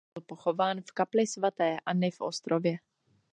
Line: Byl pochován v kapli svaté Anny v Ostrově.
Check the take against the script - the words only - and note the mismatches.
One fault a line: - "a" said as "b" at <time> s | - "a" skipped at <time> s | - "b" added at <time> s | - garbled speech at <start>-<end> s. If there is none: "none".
none